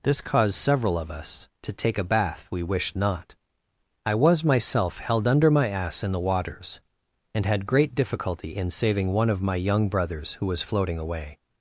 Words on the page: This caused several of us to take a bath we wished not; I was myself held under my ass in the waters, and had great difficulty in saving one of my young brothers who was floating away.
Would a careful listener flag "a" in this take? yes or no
no